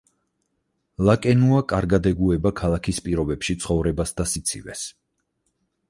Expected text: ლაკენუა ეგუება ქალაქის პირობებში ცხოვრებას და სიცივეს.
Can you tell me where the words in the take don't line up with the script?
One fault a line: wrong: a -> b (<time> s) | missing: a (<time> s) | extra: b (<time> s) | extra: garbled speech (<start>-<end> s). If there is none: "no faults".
extra: კარგად (1.7 s)